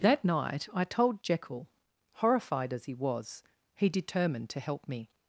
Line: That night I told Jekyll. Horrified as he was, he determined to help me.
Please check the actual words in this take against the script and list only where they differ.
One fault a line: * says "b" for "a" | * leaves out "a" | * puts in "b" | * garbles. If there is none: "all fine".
all fine